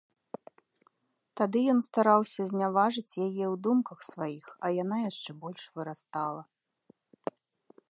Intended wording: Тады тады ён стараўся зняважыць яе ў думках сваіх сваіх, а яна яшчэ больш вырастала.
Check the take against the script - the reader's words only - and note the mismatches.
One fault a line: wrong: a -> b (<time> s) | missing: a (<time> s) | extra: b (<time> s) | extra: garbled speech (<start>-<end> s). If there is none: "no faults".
missing: тады (1.6 s)
missing: сваіх (4.5 s)